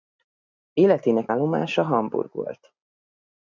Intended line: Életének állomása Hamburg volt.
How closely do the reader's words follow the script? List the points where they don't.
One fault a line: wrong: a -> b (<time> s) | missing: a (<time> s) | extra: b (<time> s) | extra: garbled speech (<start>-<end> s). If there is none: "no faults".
no faults